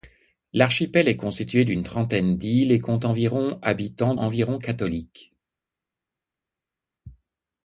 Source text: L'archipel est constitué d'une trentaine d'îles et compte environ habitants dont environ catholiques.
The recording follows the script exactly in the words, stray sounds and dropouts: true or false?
false